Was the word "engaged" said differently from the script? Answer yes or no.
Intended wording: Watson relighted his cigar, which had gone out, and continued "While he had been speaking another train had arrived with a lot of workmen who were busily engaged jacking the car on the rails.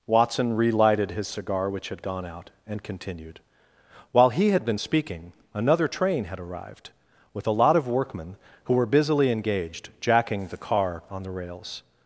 no